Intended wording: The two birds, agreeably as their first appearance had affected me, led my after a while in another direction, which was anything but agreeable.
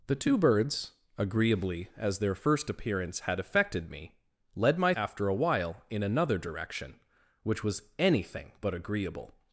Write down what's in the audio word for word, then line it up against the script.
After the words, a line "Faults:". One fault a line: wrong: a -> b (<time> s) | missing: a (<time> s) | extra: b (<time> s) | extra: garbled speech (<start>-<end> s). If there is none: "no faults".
The two birds, agreeably as their first appearance had affected me, led my after a while in another direction, which was anything but agreeable.
Faults:
no faults